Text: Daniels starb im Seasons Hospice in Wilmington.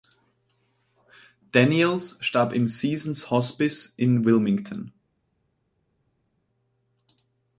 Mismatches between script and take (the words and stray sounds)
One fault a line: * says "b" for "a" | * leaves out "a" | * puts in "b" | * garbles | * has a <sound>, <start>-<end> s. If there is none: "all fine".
all fine